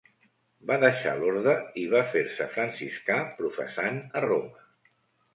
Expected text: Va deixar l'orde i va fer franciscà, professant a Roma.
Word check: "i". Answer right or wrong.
right